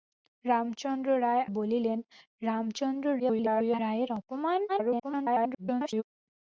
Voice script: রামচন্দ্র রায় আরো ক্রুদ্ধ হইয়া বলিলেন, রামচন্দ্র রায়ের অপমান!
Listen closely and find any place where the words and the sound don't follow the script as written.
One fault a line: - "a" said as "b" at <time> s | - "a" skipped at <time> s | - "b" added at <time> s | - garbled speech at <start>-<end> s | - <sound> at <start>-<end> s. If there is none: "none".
- "আরো ক্রুদ্ধ হইয়া" skipped at 1.4 s
- garbled speech at 3.2-3.8 s
- garbled speech at 4.7-6.0 s